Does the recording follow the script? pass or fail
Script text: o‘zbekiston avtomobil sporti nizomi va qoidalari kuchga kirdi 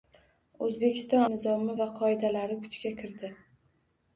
fail